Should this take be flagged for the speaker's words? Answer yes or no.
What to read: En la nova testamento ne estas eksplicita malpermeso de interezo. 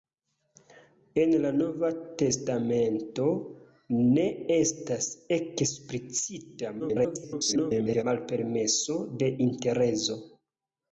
yes